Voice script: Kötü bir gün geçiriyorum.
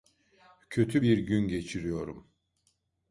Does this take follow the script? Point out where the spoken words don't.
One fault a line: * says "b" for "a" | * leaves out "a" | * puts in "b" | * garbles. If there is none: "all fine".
all fine